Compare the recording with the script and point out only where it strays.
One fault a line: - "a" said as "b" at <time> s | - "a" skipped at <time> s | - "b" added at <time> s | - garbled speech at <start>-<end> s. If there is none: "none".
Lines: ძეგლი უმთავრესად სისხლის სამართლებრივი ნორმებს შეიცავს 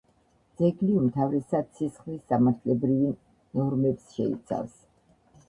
none